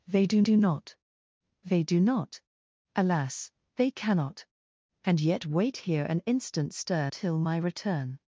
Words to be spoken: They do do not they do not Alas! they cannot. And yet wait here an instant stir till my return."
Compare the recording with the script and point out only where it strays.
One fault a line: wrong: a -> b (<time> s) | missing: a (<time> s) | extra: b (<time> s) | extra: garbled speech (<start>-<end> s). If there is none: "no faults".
no faults